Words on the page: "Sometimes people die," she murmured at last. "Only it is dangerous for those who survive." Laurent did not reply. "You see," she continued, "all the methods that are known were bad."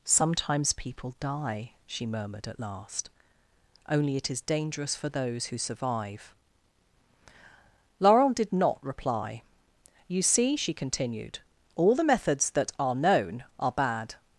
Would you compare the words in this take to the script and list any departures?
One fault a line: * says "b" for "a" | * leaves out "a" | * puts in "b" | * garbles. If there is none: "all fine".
* says "are" for "were"